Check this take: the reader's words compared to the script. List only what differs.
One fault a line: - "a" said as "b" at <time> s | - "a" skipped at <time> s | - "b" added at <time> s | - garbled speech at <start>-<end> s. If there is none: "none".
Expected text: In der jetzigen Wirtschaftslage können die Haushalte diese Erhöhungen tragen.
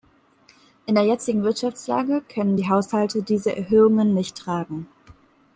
- "nicht" added at 4.1 s